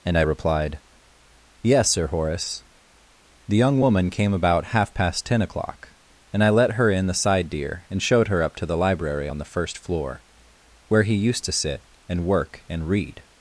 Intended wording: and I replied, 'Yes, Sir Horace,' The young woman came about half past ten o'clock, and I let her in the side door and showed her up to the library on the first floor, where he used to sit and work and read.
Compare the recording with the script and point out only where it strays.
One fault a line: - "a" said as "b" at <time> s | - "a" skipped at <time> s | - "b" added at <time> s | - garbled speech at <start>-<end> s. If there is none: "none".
- "door" said as "deer" at 7.5 s